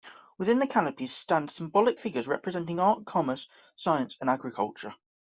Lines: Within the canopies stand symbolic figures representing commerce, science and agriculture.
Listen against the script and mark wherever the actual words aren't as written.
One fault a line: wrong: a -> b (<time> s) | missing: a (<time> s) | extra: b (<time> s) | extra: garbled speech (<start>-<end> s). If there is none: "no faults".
extra: art (2.8 s)